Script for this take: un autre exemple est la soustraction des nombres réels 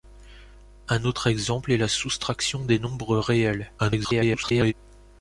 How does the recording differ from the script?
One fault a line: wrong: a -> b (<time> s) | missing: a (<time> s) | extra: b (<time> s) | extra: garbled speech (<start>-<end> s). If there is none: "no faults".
extra: garbled speech (3.8-4.7 s)